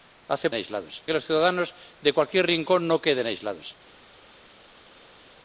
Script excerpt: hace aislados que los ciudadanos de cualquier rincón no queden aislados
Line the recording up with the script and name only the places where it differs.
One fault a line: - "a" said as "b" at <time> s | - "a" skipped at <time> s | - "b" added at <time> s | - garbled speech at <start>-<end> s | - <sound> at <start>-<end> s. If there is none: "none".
none